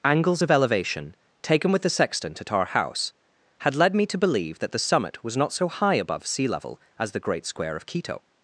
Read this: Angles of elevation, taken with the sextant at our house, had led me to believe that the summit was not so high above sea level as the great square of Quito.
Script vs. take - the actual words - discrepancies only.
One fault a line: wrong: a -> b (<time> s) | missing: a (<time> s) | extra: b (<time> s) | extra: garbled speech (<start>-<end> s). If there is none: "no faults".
no faults